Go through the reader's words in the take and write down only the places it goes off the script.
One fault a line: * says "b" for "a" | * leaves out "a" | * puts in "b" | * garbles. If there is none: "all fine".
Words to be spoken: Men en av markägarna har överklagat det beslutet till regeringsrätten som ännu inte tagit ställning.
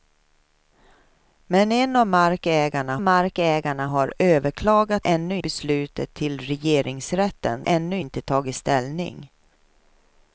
* puts in "markägarna"
* says "ännu" for "det"
* leaves out "som"